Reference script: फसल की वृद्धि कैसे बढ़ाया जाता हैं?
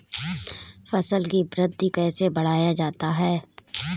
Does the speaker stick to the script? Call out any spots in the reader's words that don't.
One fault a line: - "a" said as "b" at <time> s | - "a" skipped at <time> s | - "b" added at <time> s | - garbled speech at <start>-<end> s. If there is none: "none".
none